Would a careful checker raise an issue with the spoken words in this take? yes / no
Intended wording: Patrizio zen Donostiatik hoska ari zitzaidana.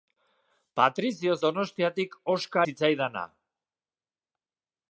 yes